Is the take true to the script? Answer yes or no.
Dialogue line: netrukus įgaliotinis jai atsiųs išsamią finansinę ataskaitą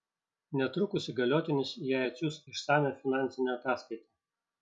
yes